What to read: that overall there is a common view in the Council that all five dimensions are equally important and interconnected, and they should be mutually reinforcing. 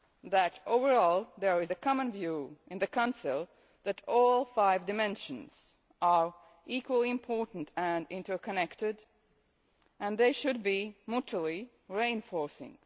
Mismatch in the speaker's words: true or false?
false